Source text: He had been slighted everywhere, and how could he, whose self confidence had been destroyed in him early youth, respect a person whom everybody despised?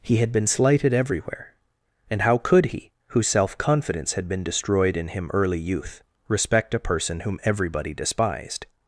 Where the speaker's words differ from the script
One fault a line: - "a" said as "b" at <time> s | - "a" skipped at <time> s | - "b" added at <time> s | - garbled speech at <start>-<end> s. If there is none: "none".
none